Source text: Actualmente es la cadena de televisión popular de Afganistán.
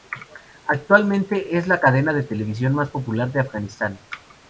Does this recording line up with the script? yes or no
no